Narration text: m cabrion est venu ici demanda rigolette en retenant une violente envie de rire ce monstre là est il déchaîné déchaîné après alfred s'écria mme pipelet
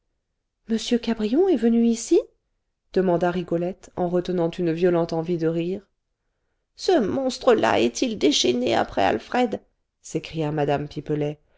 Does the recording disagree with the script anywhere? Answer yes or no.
yes